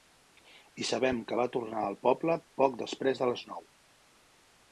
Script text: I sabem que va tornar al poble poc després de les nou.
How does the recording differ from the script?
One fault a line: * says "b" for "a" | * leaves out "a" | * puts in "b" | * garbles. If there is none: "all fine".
all fine